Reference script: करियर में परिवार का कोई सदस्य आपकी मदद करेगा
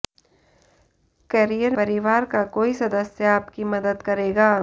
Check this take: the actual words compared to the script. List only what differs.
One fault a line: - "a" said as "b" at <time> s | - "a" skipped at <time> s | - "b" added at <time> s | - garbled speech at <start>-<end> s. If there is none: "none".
- "में" skipped at 1.8 s